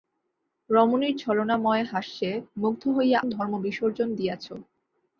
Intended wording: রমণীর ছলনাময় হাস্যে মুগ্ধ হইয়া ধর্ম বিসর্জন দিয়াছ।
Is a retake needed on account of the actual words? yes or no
no